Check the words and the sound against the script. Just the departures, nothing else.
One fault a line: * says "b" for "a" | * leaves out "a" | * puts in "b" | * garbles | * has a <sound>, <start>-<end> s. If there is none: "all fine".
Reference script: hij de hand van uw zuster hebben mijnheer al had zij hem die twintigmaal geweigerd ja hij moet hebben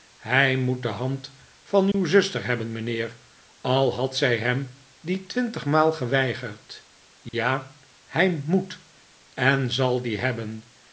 * puts in "moet"
* has a dropout, 1.9-1.9 s
* has a dropout, 7.3-7.3 s
* puts in "en zal die"